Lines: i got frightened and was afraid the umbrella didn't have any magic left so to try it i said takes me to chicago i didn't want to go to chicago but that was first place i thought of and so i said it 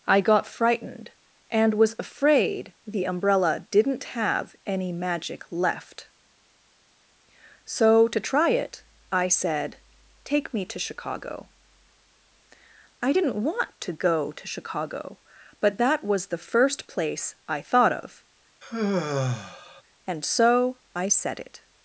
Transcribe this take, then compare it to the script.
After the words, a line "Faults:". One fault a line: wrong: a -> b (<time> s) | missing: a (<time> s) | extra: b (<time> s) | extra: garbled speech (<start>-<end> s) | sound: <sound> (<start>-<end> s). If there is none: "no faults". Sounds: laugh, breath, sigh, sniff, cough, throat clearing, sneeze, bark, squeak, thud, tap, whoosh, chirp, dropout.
i got frightened and was afraid the umbrella didn't have any magic left so to try it i said take me to chicago i didn't want to go to chicago but that was the first place i thought of and so i said it
Faults:
wrong: takes -> take (10.2 s)
extra: the (16.3 s)
sound: sigh (18.6-19.8 s)